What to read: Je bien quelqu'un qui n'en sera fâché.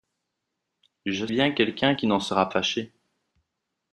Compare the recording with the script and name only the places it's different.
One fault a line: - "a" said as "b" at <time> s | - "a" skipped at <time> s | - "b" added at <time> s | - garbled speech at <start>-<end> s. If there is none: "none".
none